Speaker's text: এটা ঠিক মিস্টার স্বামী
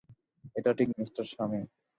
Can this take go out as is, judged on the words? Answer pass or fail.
pass